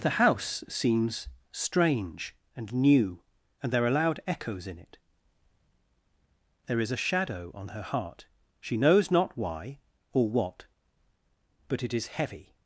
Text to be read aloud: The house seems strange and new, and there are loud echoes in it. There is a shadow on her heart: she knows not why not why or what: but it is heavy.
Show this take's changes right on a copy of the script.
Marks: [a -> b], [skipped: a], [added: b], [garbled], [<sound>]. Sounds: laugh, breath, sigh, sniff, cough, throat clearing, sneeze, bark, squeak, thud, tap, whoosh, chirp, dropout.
The house seems strange and new, and there are loud echoes in it. There is a shadow on her heart: she knows not why [skipped: not why] or what: but it is heavy.